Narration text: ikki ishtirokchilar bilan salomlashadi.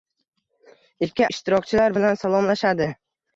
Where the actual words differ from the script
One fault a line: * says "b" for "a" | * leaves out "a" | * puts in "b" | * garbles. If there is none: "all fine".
all fine